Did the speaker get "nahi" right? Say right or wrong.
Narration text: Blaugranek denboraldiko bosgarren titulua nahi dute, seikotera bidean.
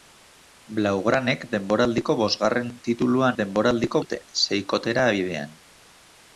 wrong